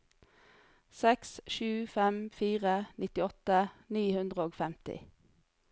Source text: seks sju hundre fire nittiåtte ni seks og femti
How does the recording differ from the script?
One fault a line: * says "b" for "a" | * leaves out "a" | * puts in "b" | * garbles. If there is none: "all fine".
* says "fem" for "hundre"
* says "hundre" for "seks"